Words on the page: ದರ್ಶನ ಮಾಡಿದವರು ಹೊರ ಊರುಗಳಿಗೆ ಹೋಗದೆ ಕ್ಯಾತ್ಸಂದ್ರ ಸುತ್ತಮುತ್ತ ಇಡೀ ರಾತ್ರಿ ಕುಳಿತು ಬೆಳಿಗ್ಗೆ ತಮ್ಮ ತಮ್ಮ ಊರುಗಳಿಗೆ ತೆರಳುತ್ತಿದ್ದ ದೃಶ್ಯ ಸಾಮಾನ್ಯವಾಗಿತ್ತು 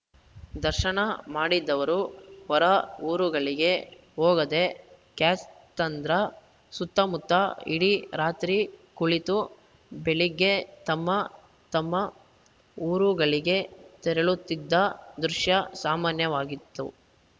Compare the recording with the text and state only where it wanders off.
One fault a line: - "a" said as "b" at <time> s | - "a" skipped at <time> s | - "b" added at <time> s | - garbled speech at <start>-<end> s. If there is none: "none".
none